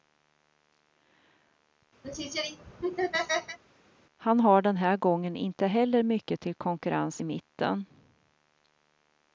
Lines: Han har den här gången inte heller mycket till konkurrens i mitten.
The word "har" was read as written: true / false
true